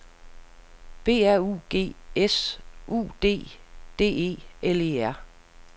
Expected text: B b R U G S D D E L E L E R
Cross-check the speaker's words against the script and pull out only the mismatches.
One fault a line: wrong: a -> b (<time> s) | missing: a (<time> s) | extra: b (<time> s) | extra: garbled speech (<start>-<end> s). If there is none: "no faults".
missing: b (1.3 s)
extra: U (2.9 s)
missing: L E (5.0 s)